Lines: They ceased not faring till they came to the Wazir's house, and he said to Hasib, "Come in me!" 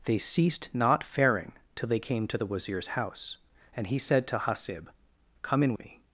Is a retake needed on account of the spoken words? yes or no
no